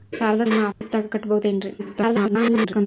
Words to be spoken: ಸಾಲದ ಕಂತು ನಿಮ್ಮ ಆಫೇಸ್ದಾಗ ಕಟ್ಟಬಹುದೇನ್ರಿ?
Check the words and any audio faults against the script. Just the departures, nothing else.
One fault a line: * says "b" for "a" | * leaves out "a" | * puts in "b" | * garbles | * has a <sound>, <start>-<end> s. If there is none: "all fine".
* leaves out "ಕಂತು"
* has a dropout, 0.7-0.8 s
* garbles